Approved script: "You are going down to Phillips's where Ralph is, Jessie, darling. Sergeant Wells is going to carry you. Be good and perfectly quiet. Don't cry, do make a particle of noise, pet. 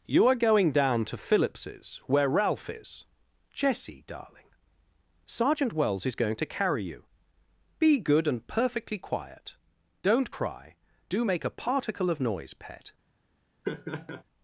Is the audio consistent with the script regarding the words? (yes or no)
yes